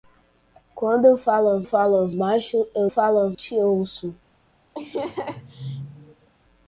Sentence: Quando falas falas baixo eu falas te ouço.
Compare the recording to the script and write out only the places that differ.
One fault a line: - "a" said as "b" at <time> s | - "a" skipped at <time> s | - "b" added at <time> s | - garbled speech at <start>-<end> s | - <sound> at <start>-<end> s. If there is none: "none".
- laugh at 4.7-6.3 s